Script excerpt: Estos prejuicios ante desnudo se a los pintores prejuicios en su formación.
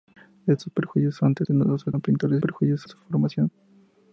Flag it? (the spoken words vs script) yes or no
no